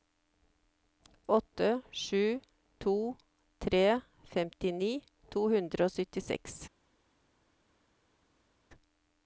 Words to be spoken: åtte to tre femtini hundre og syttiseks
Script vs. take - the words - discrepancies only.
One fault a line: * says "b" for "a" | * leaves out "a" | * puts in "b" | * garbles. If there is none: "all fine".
* puts in "sju"
* puts in "to"